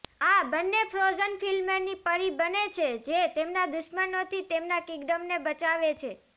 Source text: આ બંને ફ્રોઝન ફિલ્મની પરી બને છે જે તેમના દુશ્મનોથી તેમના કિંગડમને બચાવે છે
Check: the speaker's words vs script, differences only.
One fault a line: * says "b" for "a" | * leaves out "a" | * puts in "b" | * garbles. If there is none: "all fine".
all fine